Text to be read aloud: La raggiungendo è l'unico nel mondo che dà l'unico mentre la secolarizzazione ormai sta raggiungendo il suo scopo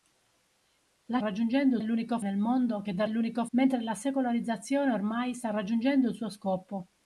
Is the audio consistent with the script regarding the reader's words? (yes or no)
yes